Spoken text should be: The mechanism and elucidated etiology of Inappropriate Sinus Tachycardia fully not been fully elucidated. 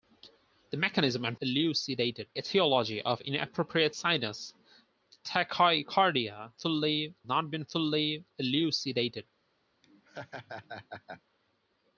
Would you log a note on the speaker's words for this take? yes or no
no